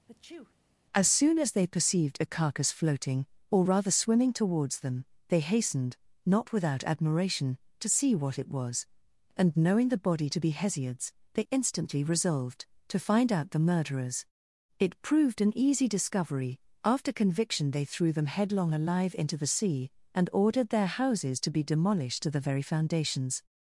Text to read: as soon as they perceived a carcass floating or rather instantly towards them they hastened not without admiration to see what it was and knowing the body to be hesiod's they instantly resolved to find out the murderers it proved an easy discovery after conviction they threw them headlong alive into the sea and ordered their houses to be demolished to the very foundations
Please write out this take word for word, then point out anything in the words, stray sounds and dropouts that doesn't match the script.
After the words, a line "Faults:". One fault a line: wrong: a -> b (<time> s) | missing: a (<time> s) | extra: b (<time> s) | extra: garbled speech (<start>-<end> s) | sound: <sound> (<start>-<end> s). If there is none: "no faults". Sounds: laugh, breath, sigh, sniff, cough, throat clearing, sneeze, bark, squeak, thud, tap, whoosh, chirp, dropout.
as soon as they perceived a carcass floating or rather swimming towards them they hastened not without admiration to see what it was and knowing the body to be hesiod's they instantly resolved to find out the murderers it proved an easy discovery after conviction they threw them headlong alive into the sea and ordered their houses to be demolished to the very foundations
Faults:
sound: sneeze (0.1-0.5 s)
wrong: instantly -> swimming (3.9 s)